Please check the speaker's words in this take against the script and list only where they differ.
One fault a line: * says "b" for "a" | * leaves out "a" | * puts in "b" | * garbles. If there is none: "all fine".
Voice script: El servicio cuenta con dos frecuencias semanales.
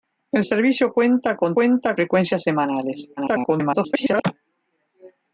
* says "cuenta" for "dos"
* garbles